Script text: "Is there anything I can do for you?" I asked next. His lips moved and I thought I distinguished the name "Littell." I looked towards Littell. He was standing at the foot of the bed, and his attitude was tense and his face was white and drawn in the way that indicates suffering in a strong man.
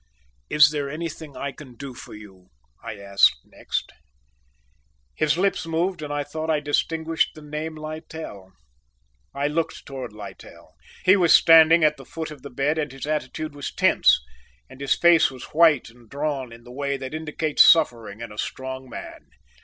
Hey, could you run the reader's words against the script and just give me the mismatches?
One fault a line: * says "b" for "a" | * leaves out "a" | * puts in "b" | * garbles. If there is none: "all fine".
all fine